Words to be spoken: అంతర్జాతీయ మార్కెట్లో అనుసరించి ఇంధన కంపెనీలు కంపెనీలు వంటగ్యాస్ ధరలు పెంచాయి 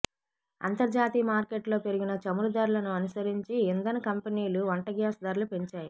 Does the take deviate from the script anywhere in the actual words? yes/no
yes